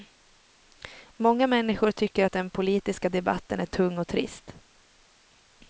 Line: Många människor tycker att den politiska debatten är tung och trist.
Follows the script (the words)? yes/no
yes